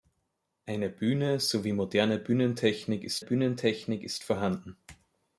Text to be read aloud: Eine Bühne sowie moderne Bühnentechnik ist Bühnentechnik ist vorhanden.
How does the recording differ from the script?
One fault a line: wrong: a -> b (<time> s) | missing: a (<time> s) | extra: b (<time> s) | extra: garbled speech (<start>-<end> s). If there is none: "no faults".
no faults